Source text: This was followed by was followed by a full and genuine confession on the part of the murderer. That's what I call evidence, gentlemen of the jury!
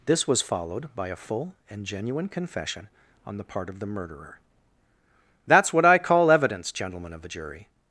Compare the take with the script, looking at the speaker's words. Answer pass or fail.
fail